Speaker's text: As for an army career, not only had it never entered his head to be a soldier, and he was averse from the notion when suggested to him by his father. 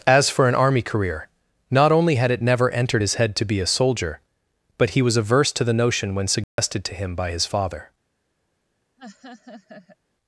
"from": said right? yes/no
no